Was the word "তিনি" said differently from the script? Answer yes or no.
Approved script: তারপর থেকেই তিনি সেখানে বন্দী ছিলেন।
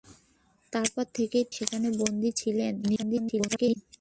yes